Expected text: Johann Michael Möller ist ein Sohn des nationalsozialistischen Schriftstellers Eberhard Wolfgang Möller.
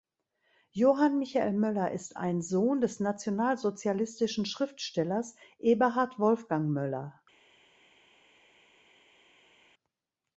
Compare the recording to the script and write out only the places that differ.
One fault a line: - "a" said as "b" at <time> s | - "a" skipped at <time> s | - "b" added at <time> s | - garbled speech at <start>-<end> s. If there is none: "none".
none